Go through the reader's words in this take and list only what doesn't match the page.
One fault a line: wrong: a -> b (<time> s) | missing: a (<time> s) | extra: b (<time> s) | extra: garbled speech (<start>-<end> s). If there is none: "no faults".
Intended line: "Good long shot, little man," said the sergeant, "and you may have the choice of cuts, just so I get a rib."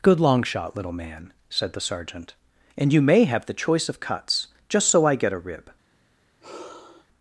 no faults